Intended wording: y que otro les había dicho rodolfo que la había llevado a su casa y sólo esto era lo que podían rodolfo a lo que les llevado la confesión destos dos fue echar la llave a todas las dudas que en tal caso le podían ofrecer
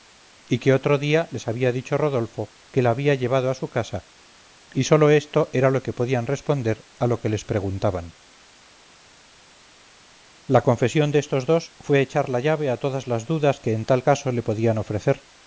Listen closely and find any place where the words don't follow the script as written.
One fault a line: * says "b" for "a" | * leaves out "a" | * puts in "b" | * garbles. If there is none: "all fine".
* puts in "día"
* says "responder" for "rodolfo"
* says "preguntaban" for "llevado"